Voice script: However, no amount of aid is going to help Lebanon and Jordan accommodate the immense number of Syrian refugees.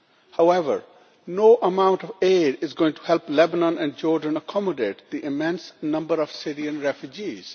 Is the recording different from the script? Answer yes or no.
no